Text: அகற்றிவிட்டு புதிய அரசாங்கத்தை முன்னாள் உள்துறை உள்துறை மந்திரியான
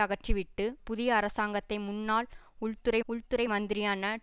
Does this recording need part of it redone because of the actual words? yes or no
no